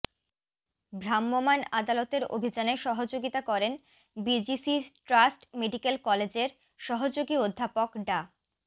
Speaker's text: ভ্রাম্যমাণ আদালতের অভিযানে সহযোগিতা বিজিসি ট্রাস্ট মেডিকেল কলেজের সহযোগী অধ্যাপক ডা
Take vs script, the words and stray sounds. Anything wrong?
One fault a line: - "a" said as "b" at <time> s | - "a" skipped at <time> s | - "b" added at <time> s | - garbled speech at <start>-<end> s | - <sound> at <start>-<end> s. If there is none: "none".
- "করেন" added at 3.4 s